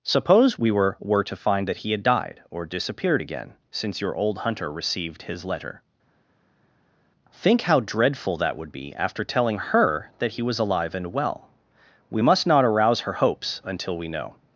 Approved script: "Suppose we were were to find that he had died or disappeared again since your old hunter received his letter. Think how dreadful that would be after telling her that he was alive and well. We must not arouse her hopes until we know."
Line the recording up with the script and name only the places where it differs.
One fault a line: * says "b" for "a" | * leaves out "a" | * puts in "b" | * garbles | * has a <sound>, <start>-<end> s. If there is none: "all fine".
all fine